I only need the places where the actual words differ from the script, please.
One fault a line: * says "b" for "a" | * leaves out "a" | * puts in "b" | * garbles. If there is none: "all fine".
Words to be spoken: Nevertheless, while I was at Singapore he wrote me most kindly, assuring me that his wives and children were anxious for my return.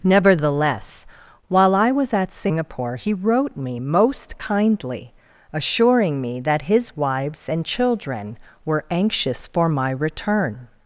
all fine